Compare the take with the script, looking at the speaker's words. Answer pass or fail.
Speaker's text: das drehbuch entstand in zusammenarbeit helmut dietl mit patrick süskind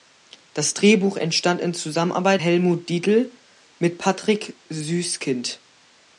pass